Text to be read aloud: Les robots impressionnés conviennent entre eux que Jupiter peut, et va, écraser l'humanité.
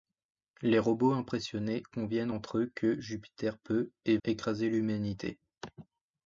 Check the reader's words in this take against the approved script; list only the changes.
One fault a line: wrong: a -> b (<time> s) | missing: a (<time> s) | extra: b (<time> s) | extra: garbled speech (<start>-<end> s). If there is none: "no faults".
missing: va (4.2 s)